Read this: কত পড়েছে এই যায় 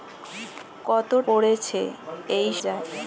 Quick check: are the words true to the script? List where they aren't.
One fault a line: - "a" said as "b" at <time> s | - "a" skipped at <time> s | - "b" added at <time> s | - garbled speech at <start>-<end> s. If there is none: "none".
none